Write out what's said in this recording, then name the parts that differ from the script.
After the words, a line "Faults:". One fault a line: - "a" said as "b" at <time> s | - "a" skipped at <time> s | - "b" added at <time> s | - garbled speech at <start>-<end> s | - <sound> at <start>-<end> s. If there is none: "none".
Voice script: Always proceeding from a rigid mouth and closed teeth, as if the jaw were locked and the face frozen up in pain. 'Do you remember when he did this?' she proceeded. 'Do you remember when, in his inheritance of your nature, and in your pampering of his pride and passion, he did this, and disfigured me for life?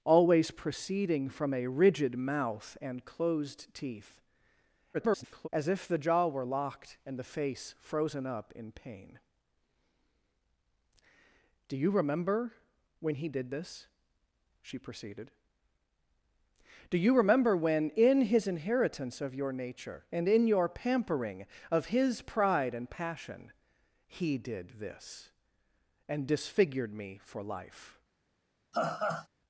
Always proceeding from a rigid mouth and closed teeth, [garbled] as if the jaw were locked and the face frozen up in pain. 'Do you remember when he did this?' she proceeded. 'Do you remember when, in his inheritance of your nature, and in your pampering of his pride and passion, he did this, and disfigured me for life?
Faults:
- garbled speech at 4.9-5.5 s
- laugh at 28.7-29.3 s